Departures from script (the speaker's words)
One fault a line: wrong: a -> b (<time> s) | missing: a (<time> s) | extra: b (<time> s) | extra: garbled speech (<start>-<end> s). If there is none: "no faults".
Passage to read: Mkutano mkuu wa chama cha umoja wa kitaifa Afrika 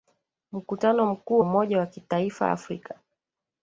missing: wa chama cha (1.4 s)